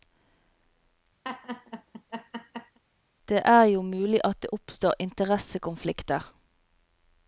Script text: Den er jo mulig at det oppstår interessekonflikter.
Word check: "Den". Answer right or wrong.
wrong